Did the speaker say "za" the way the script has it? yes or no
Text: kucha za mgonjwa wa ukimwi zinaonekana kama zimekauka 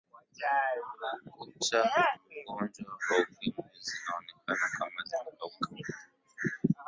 no